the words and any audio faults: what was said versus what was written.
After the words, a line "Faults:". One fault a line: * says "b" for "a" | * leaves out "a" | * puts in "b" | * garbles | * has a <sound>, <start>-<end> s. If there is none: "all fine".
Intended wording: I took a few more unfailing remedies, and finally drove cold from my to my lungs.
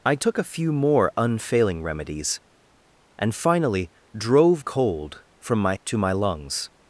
I took a few more unfailing remedies, and finally drove cold from my to my lungs.
Faults:
all fine